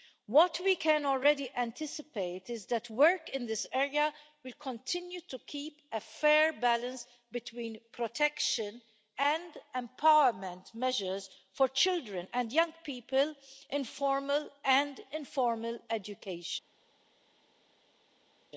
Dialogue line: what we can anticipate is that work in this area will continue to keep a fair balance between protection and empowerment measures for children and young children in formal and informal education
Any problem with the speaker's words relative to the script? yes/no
yes